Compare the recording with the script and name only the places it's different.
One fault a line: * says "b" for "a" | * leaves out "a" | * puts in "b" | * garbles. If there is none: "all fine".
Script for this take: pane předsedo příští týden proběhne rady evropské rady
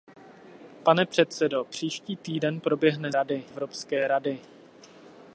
all fine